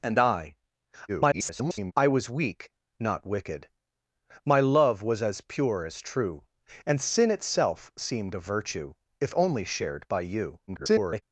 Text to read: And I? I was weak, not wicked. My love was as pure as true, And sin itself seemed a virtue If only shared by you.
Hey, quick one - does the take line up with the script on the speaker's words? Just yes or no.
no